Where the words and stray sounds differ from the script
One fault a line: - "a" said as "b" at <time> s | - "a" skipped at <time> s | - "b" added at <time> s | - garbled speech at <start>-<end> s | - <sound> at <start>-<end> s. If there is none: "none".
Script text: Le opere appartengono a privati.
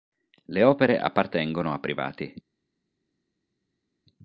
none